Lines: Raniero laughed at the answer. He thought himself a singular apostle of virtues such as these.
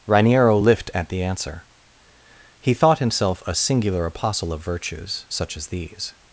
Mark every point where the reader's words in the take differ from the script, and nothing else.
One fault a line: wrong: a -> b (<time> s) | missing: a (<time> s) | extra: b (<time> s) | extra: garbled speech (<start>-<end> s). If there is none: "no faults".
wrong: laughed -> lift (0.6 s)